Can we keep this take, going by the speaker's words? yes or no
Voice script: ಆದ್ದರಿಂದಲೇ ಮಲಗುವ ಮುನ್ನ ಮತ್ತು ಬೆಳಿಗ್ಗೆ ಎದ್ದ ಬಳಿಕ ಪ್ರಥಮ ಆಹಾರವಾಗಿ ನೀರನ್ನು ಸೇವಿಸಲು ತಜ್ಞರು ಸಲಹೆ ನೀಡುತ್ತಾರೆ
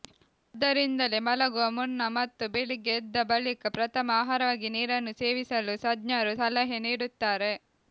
yes